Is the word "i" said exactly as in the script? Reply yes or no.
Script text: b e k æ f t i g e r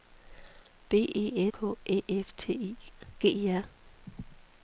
yes